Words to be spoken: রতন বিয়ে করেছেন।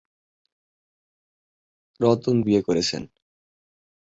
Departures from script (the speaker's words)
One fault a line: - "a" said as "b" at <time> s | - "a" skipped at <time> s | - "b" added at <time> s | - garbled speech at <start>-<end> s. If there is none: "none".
none